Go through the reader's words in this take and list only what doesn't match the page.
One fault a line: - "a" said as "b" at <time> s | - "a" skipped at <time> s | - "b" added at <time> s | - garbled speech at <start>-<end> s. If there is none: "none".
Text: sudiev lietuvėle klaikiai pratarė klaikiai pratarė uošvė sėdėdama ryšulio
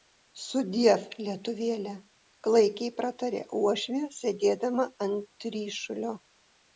- "klaikiai pratarė" skipped at 3.4 s
- "ant" added at 5.1 s